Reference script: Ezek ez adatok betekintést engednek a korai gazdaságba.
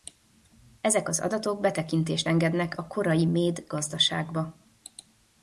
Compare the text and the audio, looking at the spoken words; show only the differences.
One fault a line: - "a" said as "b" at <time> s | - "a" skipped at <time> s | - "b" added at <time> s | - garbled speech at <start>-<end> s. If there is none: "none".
- "ez" said as "az" at 1.1 s
- "méd" added at 3.2 s